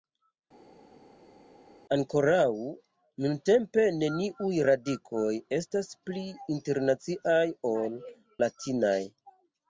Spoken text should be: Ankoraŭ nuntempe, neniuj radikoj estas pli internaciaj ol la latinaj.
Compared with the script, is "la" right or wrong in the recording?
wrong